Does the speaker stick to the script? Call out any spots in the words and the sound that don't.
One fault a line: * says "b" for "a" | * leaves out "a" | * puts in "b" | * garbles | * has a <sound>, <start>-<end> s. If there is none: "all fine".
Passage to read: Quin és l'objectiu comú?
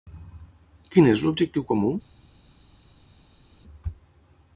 all fine